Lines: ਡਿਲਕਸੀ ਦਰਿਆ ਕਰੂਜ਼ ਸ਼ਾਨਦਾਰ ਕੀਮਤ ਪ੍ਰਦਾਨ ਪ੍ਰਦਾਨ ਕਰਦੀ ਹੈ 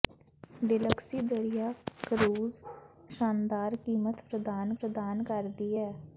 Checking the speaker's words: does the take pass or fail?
pass